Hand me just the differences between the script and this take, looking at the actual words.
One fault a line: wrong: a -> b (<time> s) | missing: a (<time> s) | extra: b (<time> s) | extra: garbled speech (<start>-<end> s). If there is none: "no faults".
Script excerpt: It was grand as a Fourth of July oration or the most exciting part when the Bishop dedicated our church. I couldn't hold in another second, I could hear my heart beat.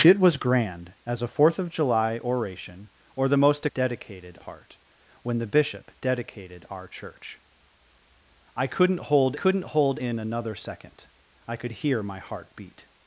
wrong: exciting -> dedicated (3.7 s)
extra: couldn't hold (9.3 s)